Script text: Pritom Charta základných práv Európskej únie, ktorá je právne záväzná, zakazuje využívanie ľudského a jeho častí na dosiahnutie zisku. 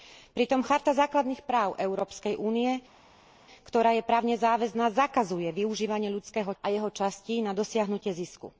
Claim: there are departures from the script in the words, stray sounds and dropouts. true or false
false